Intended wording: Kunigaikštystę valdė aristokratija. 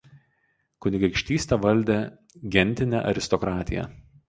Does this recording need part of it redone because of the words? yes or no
yes